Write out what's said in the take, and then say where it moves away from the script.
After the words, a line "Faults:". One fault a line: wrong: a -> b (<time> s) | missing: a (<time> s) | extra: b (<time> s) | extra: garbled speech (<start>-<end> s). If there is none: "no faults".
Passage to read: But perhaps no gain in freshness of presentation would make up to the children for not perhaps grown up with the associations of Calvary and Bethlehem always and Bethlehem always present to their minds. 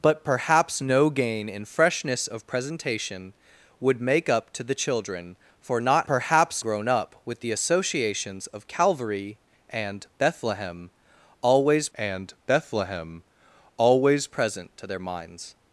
But perhaps no gain in freshness of presentation would make up to the children for not perhaps grown up with the associations of Calvary and Bethlehem always and Bethlehem always present to their minds.
Faults:
no faults